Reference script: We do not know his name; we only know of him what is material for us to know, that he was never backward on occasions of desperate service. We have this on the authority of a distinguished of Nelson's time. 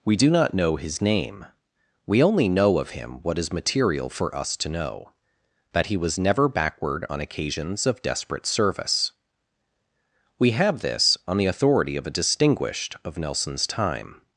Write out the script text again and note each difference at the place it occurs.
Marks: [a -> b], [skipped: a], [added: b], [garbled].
We do not know his name; we only know of him what is material for us to know, that he was never backward on occasions of desperate service. We have this on the authority of a distinguished of Nelson's time.